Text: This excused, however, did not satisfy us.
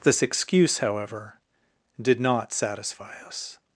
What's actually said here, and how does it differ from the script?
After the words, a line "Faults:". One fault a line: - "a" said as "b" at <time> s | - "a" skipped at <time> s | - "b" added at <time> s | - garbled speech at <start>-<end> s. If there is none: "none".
This excuse, however, did not satisfy us.
Faults:
- "excused" said as "excuse" at 0.2 s